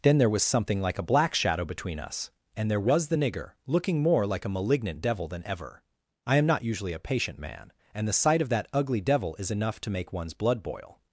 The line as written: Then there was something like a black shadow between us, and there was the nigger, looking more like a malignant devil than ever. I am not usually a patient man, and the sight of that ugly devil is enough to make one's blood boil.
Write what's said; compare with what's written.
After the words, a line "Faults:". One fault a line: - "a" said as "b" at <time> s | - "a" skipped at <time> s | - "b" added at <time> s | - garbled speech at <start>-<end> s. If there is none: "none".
Then there was something like a black shadow between us, and there was the nigger, looking more like a malignant devil than ever. I am not usually a patient man, and the sight of that ugly devil is enough to make one's blood boil.
Faults:
none